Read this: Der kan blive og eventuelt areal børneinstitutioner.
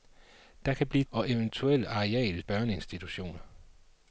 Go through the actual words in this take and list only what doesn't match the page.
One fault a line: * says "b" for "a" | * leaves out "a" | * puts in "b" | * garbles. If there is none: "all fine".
all fine